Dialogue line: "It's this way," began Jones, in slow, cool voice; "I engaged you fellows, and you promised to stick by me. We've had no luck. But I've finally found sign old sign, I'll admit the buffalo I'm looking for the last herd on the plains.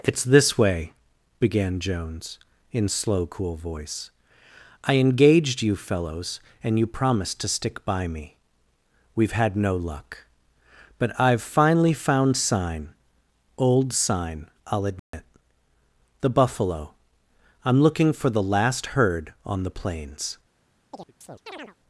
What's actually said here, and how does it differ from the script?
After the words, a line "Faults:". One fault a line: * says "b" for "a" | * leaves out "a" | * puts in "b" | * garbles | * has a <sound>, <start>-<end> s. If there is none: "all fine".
"It's this way," began Jones, in slow, cool voice; "I engaged you fellows, and you promised to stick by me. We've had no luck. But I've finally found sign old sign, I'll admit the buffalo I'm looking for the last herd on the plains.
Faults:
* has a dropout, 15.0-15.1 s
* has a chirp, 20.9-21.8 s